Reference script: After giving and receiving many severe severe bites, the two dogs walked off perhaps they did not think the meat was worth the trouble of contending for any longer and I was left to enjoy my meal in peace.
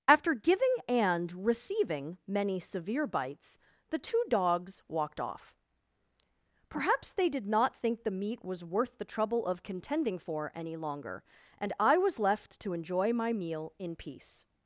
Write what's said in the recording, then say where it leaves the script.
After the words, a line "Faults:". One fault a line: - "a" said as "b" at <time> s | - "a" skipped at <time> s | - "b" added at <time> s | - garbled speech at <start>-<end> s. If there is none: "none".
After giving and receiving many severe bites, the two dogs walked off perhaps they did not think the meat was worth the trouble of contending for any longer and I was left to enjoy my meal in peace.
Faults:
- "severe" skipped at 3.1 s